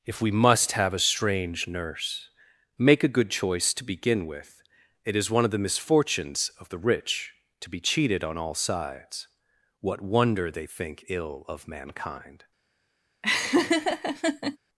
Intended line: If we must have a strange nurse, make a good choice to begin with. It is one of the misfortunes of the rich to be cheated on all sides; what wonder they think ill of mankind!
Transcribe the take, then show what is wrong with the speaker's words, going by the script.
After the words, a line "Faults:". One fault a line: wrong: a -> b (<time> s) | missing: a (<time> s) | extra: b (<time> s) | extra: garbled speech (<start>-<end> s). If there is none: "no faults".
If we must have a strange nurse, make a good choice to begin with. It is one of the misfortunes of the rich to be cheated on all sides; what wonder they think ill of mankind!
Faults:
no faults